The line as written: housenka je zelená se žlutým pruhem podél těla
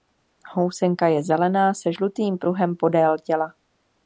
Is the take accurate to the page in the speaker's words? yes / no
yes